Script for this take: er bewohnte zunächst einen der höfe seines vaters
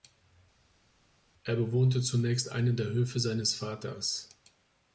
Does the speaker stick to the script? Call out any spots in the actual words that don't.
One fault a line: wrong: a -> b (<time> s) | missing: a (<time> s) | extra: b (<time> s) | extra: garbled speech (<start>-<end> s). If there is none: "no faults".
no faults